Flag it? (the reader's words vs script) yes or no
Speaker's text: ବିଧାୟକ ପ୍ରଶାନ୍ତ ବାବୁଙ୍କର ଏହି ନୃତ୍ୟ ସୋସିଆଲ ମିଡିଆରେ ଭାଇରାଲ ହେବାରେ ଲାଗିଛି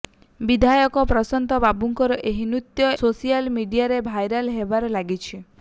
no